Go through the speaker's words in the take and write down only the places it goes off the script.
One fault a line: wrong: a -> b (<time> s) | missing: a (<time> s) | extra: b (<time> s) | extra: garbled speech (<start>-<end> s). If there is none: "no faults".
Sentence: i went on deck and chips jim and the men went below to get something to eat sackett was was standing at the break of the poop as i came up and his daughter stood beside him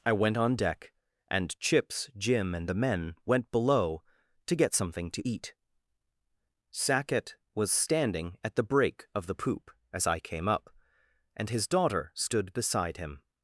missing: was (7.7 s)